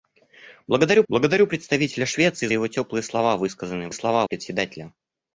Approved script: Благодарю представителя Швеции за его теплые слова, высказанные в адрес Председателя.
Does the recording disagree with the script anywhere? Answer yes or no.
yes